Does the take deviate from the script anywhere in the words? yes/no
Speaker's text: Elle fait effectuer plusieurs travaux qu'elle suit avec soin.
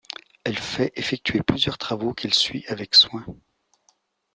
no